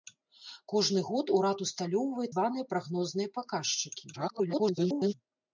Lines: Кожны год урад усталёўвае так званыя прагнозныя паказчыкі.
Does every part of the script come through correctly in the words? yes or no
no